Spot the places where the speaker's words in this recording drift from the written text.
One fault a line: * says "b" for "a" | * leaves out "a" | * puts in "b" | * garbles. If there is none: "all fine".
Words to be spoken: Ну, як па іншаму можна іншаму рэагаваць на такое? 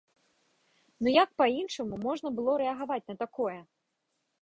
* says "было" for "іншаму"